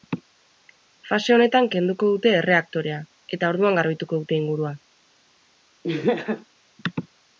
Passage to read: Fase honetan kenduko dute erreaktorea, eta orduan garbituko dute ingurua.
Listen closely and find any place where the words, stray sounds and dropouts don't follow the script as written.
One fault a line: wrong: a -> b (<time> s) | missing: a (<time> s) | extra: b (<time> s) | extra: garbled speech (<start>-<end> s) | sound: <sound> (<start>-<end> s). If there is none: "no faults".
sound: laugh (5.8-6.5 s)